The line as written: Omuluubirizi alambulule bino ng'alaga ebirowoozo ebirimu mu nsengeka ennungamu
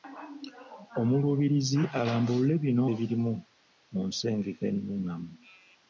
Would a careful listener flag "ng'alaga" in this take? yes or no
yes